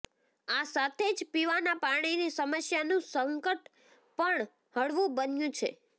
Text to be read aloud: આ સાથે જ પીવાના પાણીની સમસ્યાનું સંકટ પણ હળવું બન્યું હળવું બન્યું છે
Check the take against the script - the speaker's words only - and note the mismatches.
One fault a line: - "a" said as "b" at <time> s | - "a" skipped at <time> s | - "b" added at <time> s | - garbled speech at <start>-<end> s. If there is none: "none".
- "હળવું બન્યું" skipped at 5.6 s